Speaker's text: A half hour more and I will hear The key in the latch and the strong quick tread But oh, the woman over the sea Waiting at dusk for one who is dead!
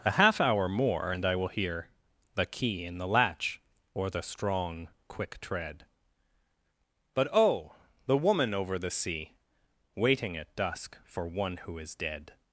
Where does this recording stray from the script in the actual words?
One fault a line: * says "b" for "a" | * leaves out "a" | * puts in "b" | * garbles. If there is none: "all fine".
* says "or" for "and"